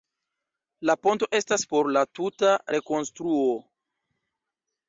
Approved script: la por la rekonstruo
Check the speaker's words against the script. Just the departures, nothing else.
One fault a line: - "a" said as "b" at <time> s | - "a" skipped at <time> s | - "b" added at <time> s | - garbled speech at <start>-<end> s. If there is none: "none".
- "ponto estas" added at 1.1 s
- "tuta" added at 2.2 s